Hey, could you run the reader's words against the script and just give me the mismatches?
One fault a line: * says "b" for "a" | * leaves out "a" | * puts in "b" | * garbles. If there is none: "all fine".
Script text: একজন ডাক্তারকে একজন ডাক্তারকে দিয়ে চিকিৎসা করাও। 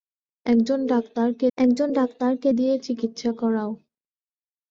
all fine